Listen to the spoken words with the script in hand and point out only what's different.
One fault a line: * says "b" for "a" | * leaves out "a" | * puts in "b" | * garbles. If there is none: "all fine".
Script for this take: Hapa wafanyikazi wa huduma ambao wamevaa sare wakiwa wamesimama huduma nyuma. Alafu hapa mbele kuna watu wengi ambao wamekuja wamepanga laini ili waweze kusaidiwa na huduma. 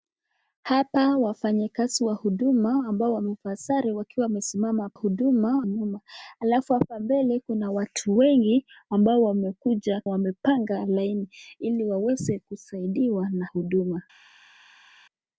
all fine